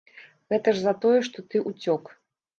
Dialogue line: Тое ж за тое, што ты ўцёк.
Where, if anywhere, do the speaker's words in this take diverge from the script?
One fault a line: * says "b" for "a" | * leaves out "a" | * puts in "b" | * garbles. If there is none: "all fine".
* says "Гэта" for "Тое"